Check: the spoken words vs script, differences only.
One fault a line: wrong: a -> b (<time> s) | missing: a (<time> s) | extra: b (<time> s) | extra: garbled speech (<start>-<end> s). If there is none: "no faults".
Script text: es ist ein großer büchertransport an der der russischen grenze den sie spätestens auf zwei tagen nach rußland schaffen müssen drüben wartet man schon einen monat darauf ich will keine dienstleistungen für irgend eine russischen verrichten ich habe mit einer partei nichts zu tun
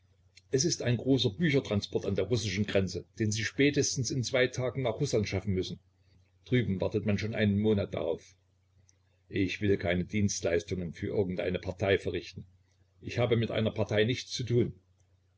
missing: der (2.2 s)
wrong: auf -> in (4.1 s)
wrong: russischen -> partei (11.6 s)